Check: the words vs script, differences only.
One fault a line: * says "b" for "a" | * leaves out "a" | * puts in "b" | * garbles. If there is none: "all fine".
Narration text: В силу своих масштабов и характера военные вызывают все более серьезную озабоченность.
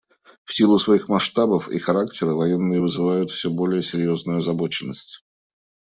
all fine